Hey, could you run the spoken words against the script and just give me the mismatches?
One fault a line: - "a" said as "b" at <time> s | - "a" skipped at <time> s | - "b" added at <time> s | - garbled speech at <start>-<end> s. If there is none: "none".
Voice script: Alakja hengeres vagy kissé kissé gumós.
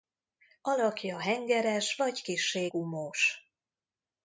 - "kissé" skipped at 2.7 s